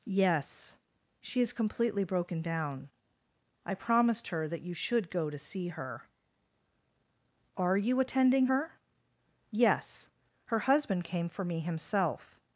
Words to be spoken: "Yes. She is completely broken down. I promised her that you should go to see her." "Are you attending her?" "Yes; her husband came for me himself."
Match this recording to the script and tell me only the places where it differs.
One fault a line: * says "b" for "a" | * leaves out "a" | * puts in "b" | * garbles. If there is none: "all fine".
all fine